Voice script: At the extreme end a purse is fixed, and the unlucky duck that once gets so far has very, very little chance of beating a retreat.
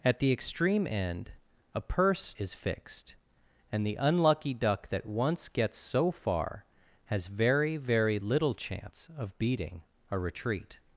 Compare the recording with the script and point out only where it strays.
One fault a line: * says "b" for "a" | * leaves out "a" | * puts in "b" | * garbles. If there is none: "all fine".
all fine